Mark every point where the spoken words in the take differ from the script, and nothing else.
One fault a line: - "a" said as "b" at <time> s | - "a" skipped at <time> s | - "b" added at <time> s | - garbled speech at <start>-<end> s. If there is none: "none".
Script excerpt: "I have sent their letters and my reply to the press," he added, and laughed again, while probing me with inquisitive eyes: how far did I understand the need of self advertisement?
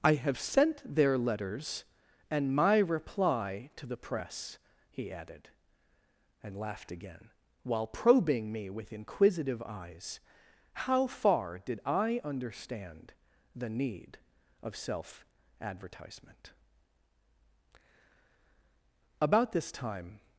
- "About this time" added at 19.2 s